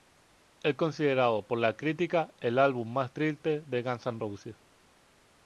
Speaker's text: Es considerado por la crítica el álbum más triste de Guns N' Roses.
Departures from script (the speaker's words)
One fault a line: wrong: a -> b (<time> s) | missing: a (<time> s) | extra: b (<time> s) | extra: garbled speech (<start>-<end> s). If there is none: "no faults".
no faults